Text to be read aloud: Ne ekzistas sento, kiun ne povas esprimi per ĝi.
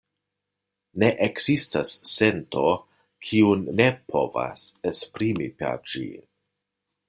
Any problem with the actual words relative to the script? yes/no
no